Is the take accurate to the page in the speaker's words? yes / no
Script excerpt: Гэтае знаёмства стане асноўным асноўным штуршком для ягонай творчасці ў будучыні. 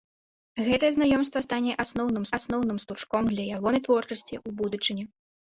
yes